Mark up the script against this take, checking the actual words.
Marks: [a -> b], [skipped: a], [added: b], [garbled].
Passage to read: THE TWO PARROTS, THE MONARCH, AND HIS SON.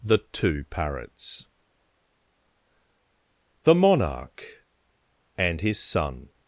THE TWO PARROTS, THE MONARCH, AND HIS SON.